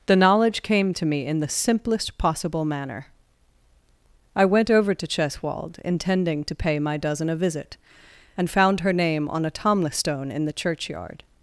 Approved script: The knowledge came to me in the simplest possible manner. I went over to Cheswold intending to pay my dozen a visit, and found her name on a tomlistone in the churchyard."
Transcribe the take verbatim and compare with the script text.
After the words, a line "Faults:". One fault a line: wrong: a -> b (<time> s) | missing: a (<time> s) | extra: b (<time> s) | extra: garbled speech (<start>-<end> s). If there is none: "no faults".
The knowledge came to me in the simplest possible manner. I went over to Cheswold intending to pay my dozen a visit, and found her name on a tomlistone in the churchyard."
Faults:
no faults